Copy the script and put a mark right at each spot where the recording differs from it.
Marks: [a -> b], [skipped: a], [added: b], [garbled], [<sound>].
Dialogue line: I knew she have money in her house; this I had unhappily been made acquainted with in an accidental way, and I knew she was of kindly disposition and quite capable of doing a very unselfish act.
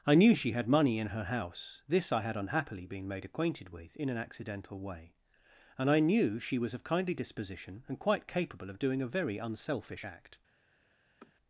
I knew she [have -> had] money in her house; this I had unhappily been made acquainted with in an accidental way, and I knew she was of kindly disposition and quite capable of doing a very unselfish act. [sniff]